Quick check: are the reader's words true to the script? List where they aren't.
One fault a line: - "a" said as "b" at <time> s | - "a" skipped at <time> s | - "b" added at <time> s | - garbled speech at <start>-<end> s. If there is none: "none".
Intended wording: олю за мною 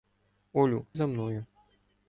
none